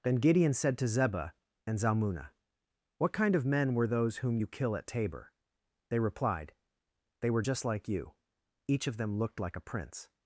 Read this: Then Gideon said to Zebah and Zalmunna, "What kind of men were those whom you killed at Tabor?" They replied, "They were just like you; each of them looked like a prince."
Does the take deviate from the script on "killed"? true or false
true